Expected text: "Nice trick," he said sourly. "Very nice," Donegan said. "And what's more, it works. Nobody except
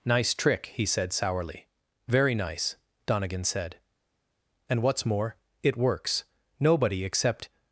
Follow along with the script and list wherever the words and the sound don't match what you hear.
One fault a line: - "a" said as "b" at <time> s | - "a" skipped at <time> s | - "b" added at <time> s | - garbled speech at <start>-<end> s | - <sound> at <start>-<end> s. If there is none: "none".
none